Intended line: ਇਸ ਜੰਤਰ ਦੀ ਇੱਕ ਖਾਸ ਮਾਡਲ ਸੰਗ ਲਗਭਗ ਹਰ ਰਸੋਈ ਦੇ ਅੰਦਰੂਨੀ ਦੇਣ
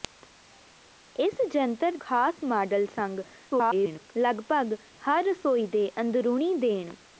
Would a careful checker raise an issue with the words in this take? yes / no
yes